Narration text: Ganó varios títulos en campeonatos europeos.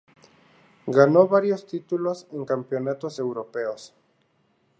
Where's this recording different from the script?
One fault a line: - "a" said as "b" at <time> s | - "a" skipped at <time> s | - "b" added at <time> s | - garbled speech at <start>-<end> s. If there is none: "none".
none